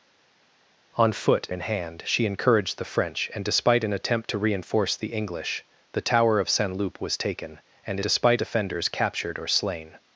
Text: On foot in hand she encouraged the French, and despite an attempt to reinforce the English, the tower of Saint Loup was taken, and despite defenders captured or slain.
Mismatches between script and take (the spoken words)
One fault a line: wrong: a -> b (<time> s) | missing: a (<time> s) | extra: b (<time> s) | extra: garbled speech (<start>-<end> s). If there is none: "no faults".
no faults